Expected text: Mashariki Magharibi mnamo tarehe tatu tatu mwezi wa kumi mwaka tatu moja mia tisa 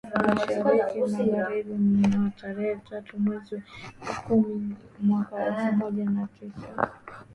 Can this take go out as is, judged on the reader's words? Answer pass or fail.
fail